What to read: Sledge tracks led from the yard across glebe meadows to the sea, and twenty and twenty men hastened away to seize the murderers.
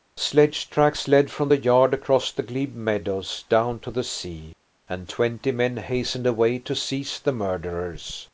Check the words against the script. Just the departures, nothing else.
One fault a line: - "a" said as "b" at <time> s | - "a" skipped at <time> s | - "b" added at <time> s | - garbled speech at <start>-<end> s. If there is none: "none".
- "the" added at 2.3 s
- "down" added at 3.5 s
- "and twenty" skipped at 5.5 s